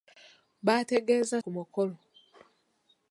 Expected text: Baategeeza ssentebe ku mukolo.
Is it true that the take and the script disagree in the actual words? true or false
true